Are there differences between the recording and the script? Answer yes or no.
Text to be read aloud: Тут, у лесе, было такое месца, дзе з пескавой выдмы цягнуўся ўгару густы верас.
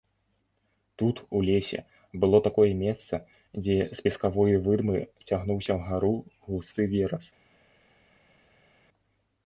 no